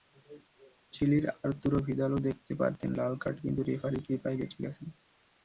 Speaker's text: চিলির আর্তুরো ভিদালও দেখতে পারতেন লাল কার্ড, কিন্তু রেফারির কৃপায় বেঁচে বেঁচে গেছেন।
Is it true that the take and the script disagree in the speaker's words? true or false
true